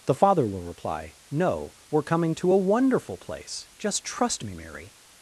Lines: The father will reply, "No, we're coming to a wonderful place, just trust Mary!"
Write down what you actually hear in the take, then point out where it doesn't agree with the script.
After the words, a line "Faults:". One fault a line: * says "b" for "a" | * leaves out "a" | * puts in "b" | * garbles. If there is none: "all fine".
The father will reply, "No, we're coming to a wonderful place, just trust me, Mary!"
Faults:
* puts in "me"